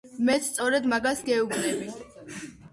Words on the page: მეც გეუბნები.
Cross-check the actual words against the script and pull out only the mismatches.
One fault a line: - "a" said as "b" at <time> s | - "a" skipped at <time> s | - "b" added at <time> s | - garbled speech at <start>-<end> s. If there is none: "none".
- "სწორედ მაგას" added at 0.5 s